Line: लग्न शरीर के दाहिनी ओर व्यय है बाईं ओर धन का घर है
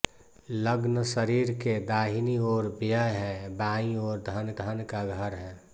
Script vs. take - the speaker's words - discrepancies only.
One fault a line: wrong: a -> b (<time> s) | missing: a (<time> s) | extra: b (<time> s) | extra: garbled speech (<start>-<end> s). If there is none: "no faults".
extra: धन (4.6 s)